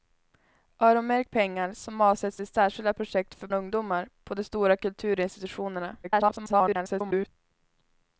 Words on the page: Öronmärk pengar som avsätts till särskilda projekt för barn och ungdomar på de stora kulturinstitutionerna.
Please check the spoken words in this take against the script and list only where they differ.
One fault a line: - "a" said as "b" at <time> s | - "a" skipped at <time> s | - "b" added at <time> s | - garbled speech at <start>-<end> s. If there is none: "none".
- "barn" skipped at 3.5 s
- garbled speech at 6.0-7.3 s